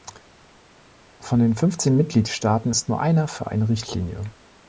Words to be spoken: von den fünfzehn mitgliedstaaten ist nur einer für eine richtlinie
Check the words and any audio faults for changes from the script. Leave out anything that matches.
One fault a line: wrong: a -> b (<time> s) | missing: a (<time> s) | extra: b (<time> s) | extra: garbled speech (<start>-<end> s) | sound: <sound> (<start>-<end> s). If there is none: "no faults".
no faults